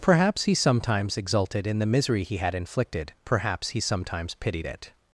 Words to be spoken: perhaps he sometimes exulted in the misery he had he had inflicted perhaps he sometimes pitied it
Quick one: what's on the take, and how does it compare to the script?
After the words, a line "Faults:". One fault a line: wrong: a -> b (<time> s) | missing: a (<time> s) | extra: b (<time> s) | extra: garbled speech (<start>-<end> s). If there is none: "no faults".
perhaps he sometimes exulted in the misery he had inflicted perhaps he sometimes pitied it
Faults:
missing: he had (2.5 s)